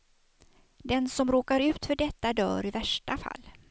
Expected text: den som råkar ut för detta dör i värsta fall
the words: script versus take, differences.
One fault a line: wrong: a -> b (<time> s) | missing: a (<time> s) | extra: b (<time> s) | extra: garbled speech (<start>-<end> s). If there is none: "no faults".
no faults